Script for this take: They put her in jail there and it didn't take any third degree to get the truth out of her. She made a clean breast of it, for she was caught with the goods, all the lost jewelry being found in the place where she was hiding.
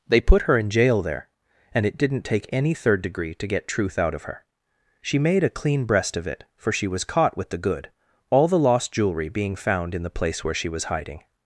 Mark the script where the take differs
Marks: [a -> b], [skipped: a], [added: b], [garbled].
They put her in jail there and it didn't take any third degree to get [skipped: the] truth out of her. She made a clean breast of it, for she was caught with the [goods, -> good] all the lost jewelry being found in the place where she was hiding.